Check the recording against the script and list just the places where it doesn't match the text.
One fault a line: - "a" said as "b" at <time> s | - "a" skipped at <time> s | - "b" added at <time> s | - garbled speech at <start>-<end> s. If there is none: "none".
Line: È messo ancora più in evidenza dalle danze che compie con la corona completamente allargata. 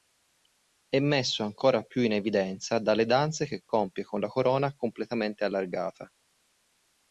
none